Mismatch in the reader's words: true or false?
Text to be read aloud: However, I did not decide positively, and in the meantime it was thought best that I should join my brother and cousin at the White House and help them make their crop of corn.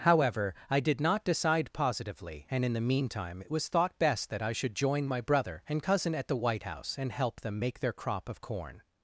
false